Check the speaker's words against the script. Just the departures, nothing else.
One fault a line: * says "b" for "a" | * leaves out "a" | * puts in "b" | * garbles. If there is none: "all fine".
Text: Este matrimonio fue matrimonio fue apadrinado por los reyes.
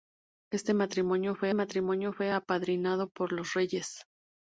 all fine